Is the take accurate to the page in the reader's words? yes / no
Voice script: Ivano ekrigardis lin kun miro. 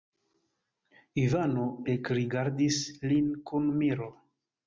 yes